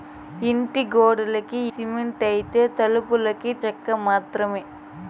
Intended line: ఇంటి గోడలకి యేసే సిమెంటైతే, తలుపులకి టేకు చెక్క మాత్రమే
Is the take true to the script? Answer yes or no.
no